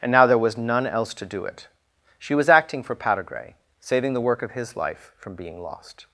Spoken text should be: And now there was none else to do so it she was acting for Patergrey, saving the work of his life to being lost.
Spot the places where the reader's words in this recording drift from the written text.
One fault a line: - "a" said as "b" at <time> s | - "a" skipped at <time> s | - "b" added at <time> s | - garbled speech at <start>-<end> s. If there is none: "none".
- "so" skipped at 1.4 s
- "to" said as "from" at 5.2 s